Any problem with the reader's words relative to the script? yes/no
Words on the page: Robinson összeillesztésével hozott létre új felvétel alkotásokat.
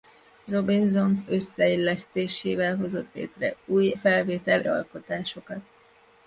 no